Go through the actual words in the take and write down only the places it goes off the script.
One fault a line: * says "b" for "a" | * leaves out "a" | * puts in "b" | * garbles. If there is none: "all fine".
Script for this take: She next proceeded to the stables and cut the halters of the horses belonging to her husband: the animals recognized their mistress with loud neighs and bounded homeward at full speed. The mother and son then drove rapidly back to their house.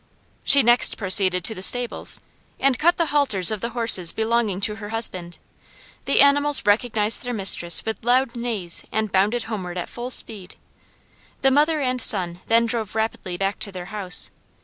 all fine